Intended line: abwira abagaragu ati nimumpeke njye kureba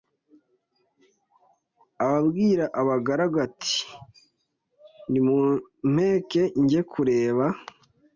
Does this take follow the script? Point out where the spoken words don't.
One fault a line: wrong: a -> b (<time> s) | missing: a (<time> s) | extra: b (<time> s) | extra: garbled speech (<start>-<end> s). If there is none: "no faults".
no faults